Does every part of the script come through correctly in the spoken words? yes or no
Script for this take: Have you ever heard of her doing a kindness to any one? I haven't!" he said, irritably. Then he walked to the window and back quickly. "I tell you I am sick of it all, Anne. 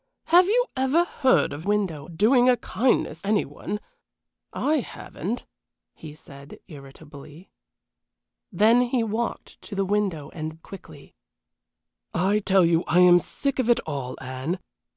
no